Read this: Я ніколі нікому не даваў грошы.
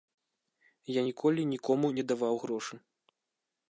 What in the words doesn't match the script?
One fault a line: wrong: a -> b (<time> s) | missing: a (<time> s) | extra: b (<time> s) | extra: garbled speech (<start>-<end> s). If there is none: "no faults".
no faults